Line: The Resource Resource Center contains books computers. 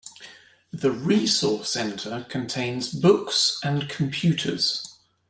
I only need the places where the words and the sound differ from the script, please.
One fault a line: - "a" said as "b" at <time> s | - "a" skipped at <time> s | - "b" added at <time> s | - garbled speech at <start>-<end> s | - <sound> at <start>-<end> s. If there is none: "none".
- "Resource" skipped at 1.7 s
- "and" added at 3.6 s